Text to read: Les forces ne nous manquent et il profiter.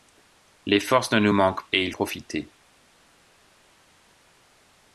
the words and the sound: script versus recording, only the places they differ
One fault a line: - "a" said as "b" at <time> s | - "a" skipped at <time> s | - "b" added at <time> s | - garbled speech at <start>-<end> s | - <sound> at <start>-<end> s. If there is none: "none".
none